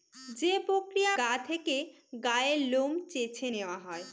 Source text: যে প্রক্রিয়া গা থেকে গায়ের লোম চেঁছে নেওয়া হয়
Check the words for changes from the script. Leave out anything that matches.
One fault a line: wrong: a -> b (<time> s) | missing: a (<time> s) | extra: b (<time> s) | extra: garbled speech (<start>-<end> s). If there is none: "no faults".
no faults